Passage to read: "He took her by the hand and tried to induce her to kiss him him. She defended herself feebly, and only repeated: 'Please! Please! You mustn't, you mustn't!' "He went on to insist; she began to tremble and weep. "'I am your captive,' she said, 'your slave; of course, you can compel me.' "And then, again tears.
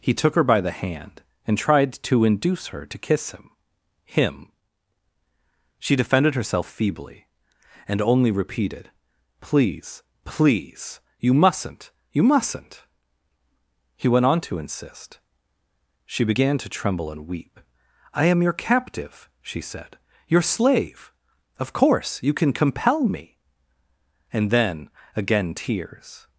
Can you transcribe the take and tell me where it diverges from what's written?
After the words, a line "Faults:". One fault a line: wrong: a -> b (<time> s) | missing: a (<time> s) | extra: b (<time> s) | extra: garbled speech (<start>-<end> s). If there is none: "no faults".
"He took her by the hand and tried to induce her to kiss him him. She defended herself feebly, and only repeated: 'Please! Please! You mustn't, you mustn't!' "He went on to insist; she began to tremble and weep. "'I am your captive,' she said, 'your slave; of course, you can compel me.' "And then, again tears.
Faults:
no faults